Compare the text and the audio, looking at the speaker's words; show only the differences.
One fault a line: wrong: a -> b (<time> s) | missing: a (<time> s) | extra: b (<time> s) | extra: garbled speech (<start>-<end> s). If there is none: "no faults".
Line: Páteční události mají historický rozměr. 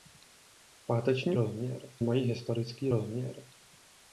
wrong: události -> rozměr (1.3 s)